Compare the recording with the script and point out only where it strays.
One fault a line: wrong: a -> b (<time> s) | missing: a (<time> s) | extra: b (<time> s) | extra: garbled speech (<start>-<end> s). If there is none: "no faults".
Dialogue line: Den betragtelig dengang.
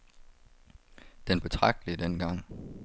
no faults